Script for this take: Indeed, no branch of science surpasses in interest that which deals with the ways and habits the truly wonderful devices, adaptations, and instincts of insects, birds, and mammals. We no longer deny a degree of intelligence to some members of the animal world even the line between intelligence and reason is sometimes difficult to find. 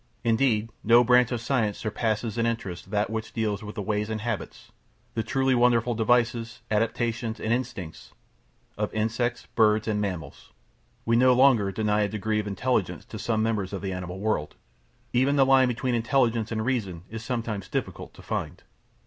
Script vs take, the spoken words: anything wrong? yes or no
no